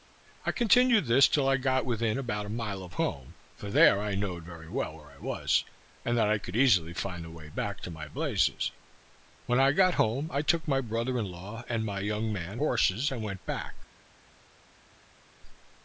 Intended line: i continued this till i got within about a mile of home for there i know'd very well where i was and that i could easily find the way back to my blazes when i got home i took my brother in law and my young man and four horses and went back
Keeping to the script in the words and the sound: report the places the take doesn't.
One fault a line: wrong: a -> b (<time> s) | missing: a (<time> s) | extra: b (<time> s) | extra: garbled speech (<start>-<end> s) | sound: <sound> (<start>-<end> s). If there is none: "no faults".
missing: and four (12.6 s)